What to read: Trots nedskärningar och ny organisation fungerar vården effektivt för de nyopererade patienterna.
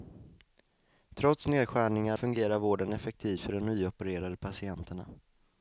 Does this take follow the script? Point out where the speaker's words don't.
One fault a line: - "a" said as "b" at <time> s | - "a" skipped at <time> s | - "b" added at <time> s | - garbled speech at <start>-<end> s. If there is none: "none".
- "och ny organisation" skipped at 2.2 s